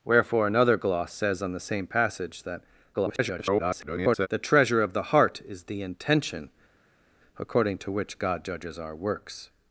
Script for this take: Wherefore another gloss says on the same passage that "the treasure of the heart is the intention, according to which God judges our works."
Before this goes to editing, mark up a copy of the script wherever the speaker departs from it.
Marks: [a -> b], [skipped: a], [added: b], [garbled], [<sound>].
Wherefore another gloss says on the same passage that [garbled] "the treasure of the heart is the intention, according to which God judges our works."